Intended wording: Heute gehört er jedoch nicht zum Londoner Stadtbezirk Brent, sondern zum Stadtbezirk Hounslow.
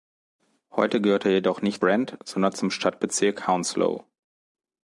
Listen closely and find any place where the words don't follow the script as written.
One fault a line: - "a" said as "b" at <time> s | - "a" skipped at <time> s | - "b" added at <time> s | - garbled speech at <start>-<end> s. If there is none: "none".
- "zum Londoner Stadtbezirk" skipped at 1.8 s